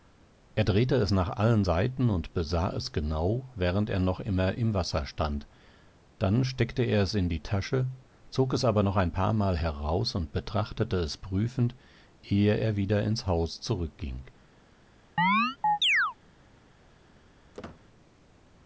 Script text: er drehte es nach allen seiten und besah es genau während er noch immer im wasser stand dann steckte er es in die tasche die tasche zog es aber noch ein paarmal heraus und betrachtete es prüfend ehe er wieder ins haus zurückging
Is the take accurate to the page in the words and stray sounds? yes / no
no